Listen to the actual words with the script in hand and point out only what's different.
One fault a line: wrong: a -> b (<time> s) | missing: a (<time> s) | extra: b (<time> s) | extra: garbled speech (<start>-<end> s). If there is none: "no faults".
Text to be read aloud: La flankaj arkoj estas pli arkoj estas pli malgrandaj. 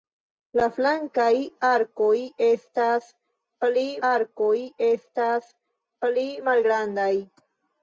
no faults